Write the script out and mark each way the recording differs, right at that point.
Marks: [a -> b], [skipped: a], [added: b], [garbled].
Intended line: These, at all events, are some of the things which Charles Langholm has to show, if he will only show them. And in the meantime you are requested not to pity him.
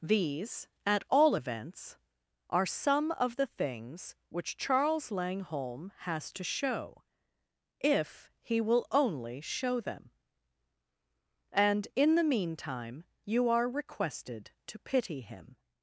These, at all events, are some of the things which Charles Langholm has to show, if he will only show them. And in the meantime you are requested [skipped: not] to pity him.